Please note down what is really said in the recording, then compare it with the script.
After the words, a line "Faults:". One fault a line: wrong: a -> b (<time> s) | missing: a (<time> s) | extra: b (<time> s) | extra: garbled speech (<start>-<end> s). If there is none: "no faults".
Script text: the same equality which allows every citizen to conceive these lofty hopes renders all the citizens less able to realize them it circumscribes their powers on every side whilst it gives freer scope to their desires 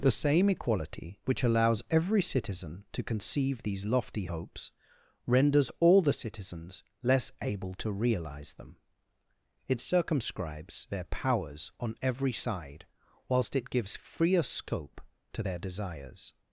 the same equality which allows every citizen to conceive these lofty hopes renders all the citizens less able to realize them it circumscribes their powers on every side whilst it gives freer scope to their desires
Faults:
no faults